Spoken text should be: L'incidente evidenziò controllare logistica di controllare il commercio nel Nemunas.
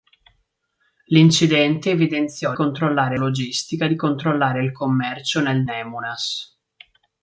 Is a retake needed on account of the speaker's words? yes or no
no